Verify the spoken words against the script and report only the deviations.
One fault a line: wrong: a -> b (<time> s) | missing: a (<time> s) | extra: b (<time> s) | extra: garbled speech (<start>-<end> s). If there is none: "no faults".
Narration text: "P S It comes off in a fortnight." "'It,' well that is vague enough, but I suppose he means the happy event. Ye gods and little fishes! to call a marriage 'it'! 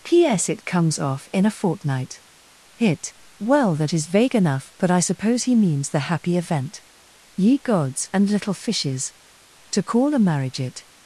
wrong: It -> Hit (2.8 s)